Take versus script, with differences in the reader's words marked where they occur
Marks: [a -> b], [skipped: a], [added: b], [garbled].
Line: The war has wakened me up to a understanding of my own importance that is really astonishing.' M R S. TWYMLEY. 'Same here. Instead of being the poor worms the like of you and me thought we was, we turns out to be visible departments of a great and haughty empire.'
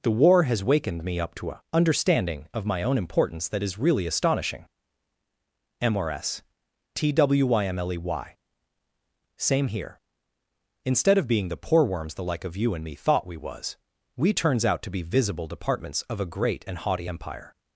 The war has wakened me up to a understanding of my own importance that is really astonishing.' M R S. TWYMLEY. 'Same here. Instead of being the poor worms the like of you and me thought we was, we turns out to be visible departments of a great and haughty empire.'